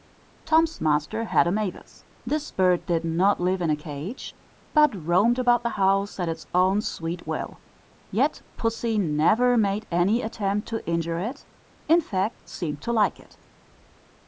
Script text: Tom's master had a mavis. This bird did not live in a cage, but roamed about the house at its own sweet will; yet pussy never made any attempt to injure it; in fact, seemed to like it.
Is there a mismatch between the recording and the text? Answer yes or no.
no